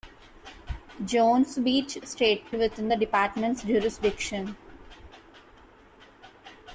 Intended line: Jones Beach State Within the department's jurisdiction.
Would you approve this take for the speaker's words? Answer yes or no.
yes